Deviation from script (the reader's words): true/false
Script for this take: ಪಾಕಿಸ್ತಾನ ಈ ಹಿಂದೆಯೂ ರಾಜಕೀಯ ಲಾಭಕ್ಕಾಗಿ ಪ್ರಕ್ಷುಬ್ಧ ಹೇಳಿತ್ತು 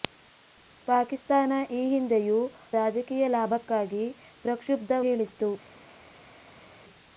false